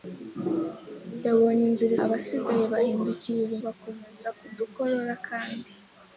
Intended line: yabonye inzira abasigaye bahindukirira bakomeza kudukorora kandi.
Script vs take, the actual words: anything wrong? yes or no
no